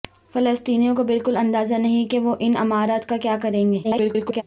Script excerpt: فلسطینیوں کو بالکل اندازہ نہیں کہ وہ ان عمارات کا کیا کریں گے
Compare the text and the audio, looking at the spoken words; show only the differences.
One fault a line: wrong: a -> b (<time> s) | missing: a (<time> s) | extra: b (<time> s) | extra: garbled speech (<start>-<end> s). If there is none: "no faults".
extra: garbled speech (3.8-4.4 s)